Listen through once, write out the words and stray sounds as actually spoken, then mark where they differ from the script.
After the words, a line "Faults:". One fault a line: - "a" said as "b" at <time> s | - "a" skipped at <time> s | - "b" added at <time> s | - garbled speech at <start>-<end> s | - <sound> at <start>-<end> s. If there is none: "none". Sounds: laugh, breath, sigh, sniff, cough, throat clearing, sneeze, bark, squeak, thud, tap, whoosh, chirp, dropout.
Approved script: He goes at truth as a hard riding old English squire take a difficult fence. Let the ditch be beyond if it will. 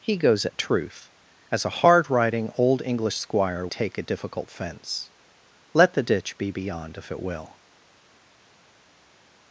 He goes at truth as a hard riding old English squire take a difficult fence. Let the ditch be beyond if it will.
Faults:
none